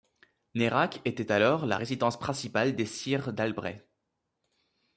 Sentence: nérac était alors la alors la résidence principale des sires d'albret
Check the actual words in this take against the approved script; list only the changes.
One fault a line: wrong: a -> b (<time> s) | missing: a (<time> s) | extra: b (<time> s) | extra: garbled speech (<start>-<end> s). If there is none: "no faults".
missing: alors la (1.8 s)